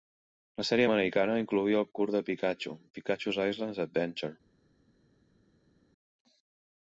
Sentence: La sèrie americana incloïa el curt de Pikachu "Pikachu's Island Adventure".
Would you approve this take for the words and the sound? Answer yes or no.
yes